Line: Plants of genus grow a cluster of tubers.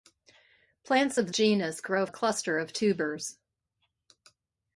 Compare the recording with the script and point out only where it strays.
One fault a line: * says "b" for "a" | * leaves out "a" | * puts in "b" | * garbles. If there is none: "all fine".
all fine